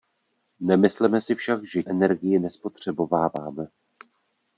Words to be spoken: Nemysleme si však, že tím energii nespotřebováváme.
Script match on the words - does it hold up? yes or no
no